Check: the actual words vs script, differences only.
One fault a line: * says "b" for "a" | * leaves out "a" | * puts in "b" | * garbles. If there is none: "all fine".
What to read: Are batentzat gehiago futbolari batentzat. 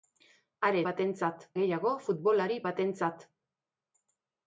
all fine